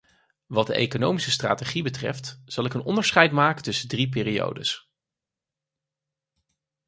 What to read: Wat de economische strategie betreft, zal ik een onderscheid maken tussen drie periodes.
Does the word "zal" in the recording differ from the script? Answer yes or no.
no